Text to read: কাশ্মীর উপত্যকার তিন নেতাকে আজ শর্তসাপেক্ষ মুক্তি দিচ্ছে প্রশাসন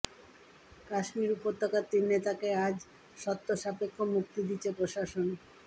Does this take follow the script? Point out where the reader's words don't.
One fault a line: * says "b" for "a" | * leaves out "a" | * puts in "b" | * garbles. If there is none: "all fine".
all fine